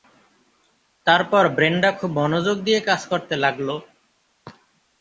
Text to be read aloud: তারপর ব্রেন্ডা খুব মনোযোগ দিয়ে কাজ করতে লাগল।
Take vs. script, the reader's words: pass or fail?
pass